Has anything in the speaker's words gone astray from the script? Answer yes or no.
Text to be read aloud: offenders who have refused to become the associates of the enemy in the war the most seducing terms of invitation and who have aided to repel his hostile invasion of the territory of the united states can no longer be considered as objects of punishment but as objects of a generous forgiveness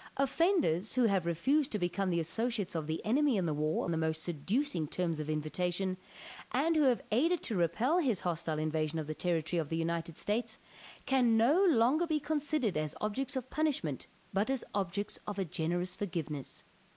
no